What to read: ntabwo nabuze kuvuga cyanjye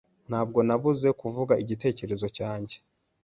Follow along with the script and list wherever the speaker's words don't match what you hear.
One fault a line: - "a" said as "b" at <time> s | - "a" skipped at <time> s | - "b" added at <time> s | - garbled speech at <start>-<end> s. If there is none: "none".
- "igitekerezo" added at 1.6 s